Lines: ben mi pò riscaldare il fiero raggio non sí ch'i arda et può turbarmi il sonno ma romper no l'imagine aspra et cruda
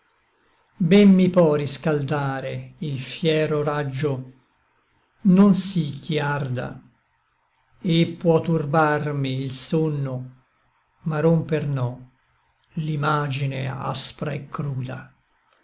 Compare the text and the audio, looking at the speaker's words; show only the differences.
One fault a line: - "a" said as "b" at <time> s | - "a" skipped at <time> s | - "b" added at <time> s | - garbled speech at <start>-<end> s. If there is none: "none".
none